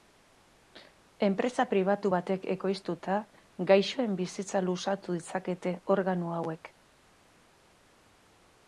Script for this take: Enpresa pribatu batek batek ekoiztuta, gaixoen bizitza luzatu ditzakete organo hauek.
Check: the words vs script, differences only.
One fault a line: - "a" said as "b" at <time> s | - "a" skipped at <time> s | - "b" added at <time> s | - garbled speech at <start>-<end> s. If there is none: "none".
- "batek" skipped at 2.5 s